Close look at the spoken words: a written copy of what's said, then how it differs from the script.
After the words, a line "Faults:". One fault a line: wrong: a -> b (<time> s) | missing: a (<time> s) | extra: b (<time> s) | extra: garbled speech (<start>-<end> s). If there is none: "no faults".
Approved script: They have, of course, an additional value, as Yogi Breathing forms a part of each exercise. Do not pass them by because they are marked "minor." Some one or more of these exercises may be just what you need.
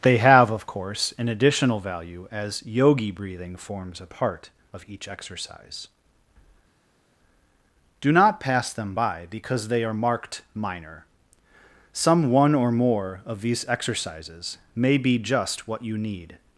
They have, of course, an additional value, as Yogi Breathing forms a part of each exercise. Do not pass them by because they are marked "minor." Some one or more of these exercises may be just what you need.
Faults:
no faults